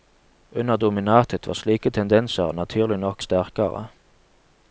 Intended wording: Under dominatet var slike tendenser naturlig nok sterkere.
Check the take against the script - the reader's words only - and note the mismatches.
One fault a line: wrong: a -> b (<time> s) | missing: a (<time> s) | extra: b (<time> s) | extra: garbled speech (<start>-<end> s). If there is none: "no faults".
no faults